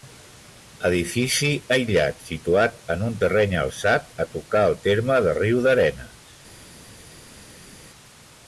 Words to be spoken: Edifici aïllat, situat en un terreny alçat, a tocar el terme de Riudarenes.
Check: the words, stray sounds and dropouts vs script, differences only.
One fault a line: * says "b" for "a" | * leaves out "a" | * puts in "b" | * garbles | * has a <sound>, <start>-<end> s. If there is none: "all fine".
all fine